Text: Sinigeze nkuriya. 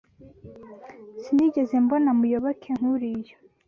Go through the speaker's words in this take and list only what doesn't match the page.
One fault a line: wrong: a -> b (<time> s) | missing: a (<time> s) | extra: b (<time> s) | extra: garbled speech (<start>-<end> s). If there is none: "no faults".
extra: mbona Muyoboke (1.8 s)